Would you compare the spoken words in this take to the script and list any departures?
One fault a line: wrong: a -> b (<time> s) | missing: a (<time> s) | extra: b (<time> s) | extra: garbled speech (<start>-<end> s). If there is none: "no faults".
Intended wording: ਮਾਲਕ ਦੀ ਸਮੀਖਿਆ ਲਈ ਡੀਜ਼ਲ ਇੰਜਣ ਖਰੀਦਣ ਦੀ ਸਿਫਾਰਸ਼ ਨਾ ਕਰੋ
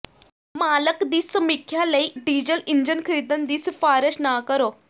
no faults